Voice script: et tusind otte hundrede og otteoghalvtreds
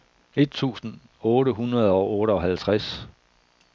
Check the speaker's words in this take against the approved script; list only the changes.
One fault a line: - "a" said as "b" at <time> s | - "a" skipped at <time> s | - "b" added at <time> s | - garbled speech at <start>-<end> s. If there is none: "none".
none